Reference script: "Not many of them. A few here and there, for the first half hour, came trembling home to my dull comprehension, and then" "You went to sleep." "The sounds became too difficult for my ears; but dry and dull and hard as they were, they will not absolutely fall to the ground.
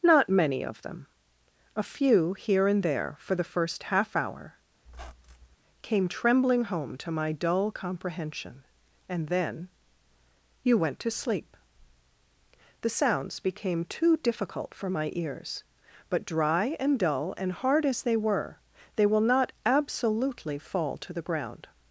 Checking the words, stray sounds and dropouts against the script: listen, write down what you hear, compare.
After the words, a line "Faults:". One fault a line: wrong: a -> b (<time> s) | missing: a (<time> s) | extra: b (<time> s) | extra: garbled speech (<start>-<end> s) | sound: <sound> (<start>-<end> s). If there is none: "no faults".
"Not many of them. A few here and there, for the first half hour, came trembling home to my dull comprehension, and then" "You went to sleep." "The sounds became too difficult for my ears; but dry and dull and hard as they were, they will not absolutely fall to the ground.
Faults:
sound: squeak (4.8-5.6 s)